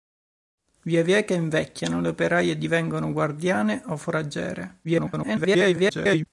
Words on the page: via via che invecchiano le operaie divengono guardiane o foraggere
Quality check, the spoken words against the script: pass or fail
fail